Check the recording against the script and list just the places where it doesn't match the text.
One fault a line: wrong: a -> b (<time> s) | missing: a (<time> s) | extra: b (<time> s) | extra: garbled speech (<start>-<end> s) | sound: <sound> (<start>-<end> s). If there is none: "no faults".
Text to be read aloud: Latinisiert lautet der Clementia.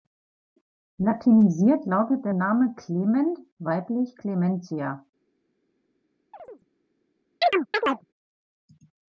extra: Name Clement weiblich (2.3 s)
sound: chirp (6.3-6.7 s)
sound: chirp (7.4-8.1 s)